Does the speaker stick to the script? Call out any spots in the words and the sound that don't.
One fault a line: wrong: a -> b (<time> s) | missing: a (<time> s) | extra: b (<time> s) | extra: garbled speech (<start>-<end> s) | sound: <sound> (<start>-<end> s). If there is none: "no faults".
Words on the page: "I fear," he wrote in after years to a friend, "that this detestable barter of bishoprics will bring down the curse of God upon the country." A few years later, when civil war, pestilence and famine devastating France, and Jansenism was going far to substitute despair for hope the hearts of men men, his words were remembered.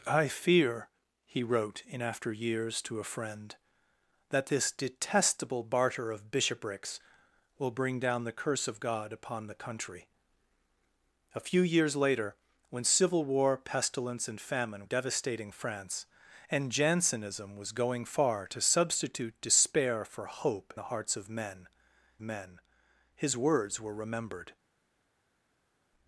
no faults